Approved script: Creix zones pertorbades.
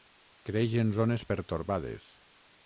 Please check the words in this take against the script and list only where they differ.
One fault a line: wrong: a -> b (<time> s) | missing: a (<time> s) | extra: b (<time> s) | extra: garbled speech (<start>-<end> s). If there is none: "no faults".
extra: en (0.8 s)